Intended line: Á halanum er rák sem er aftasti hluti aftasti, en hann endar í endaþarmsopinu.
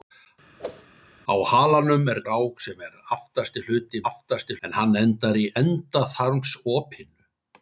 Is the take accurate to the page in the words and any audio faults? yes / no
no